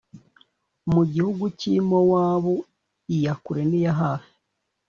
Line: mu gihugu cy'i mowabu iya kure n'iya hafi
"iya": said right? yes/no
yes